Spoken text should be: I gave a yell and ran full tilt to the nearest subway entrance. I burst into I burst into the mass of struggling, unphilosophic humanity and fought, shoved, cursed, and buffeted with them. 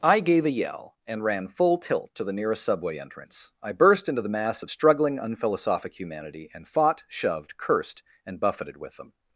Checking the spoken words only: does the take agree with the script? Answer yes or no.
no